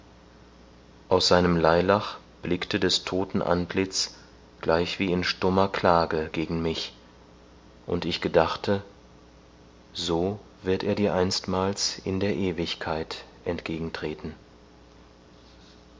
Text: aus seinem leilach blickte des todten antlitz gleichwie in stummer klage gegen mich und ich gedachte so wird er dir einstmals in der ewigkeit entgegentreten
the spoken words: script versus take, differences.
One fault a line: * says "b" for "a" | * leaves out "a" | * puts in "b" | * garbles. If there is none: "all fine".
all fine